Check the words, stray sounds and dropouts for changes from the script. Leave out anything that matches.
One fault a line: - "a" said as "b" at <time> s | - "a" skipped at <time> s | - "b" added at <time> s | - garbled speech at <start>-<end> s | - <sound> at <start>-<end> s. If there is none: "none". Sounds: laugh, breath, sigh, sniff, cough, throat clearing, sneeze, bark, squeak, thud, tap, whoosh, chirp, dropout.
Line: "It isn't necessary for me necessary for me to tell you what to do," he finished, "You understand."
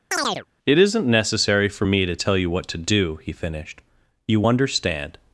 - chirp at 0.1-0.5 s
- "necessary for me" skipped at 2.0 s